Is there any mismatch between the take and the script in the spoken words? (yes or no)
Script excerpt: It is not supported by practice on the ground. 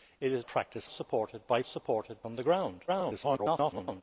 yes